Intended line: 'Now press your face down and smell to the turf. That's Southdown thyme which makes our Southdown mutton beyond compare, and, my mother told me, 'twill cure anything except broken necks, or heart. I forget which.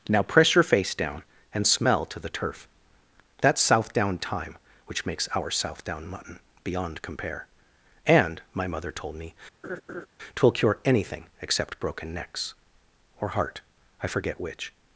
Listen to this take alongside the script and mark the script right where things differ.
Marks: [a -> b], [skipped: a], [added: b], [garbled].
'Now press your face down and smell to the turf. That's Southdown thyme which makes our Southdown mutton beyond compare, and, my mother told me, 'twill cure anything except broken necks, or heart. I forget which.